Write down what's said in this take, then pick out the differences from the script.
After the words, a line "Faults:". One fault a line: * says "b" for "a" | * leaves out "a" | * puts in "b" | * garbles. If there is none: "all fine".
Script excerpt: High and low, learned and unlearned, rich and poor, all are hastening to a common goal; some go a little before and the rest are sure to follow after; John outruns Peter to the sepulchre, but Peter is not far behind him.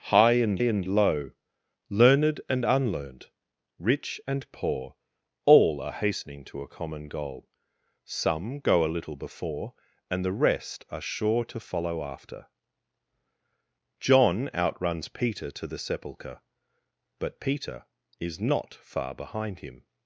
High and and low, learned and unlearned, rich and poor, all are hastening to a common goal; some go a little before and the rest are sure to follow after; John outruns Peter to the sepulchre, but Peter is not far behind him.
Faults:
* puts in "and"